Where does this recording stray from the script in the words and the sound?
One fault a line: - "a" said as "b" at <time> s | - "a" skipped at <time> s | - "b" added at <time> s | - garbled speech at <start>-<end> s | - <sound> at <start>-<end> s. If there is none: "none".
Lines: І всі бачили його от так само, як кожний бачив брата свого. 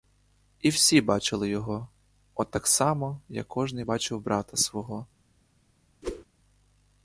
- whoosh at 6.0-6.2 s